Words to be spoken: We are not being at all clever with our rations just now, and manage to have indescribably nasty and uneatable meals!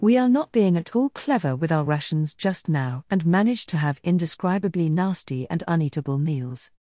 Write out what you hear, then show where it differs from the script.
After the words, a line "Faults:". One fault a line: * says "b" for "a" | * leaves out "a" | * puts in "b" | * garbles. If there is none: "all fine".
We are not being at all clever with our rations just now, and manage to have indescribably nasty and uneatable meals!
Faults:
all fine